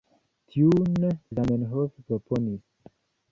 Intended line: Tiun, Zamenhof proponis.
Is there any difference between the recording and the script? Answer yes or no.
no